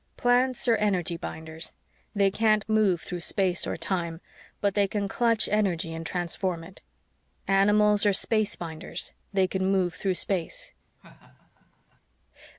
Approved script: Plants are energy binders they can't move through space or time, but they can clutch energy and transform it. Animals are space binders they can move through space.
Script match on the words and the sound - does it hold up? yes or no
no